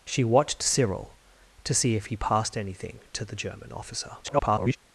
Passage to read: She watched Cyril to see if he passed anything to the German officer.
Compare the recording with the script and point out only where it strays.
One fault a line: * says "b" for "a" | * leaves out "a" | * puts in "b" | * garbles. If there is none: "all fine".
* garbles